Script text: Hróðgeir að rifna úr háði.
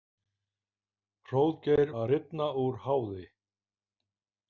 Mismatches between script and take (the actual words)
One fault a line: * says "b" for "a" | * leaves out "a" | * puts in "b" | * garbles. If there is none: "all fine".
all fine